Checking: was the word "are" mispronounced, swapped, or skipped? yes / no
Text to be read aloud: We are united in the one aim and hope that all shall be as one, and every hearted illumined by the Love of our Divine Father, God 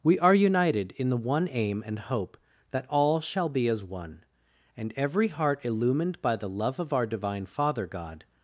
no